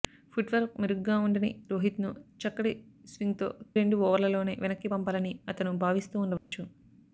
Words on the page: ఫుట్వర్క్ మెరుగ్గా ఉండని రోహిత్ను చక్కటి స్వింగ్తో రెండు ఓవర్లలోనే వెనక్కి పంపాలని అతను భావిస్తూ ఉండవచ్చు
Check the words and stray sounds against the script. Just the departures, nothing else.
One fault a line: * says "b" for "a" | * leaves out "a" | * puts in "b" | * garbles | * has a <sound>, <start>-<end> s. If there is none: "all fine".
* has a dropout, 6.4-6.5 s